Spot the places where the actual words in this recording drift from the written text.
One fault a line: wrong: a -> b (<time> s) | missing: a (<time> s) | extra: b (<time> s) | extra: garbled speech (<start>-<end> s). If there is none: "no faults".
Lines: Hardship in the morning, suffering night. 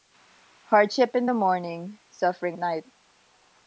no faults